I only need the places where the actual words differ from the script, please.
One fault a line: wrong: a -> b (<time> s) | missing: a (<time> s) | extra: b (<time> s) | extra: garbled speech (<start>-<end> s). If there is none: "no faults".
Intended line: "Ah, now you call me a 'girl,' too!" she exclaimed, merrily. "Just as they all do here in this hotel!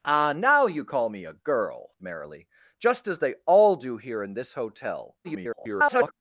missing: too she exclaimed (1.9 s)
extra: garbled speech (5.2-6.1 s)